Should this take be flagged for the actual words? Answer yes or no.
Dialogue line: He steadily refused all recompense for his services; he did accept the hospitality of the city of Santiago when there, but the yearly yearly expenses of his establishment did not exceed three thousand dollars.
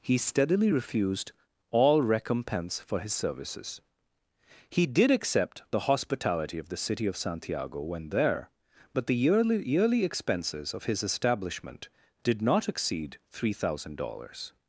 no